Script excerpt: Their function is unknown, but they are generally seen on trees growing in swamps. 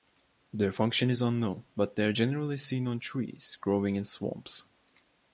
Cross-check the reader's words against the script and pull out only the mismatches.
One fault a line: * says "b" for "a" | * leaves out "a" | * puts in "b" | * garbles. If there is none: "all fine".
all fine